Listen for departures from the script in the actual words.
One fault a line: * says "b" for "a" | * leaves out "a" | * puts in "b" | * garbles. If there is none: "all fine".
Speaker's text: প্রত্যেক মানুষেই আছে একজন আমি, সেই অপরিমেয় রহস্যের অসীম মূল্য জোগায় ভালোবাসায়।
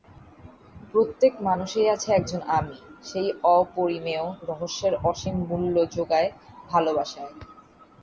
all fine